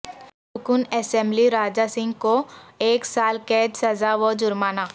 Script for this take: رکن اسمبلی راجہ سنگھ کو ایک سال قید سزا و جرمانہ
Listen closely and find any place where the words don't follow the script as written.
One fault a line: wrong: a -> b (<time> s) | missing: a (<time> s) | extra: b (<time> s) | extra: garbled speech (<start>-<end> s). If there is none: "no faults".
no faults